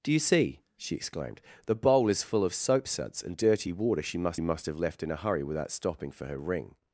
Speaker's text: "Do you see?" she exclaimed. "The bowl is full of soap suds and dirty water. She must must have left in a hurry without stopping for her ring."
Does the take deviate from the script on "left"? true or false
false